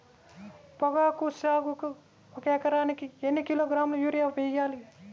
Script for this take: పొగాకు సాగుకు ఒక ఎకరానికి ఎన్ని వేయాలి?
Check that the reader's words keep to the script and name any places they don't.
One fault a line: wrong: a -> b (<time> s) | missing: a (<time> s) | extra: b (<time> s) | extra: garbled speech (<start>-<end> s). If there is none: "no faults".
extra: కిలోగ్రాముల యూరియా (3.4 s)